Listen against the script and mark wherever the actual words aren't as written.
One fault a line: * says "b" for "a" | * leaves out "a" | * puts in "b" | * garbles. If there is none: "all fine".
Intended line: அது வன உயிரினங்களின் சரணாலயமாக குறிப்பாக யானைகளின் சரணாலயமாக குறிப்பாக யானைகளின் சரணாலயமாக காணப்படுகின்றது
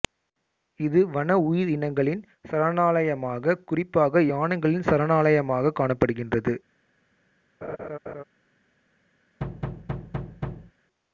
* says "இது" for "அது"
* leaves out "குறிப்பாக யானைகளின் சரணாலயமாக"